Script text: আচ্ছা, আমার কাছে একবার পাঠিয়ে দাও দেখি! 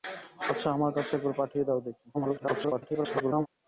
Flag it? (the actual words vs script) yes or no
yes